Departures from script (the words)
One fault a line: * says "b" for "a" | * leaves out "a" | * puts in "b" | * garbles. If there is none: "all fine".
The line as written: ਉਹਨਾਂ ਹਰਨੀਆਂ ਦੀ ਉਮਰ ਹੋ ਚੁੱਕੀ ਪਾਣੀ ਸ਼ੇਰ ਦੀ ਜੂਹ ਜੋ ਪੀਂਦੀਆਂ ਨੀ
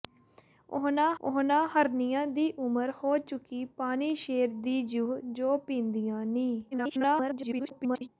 * puts in "ਉਹਨਾਂ"
* garbles